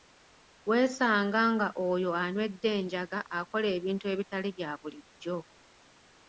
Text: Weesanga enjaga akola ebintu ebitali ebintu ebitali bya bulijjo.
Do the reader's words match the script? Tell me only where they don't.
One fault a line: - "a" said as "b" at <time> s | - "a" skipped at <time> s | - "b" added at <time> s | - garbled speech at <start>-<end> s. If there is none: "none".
- "nga oyo anywedde" added at 1.5 s
- "ebintu ebitali" skipped at 4.5 s